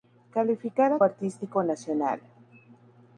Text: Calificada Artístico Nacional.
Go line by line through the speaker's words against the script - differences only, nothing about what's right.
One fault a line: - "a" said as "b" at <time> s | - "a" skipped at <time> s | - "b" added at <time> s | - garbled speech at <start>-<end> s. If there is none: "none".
none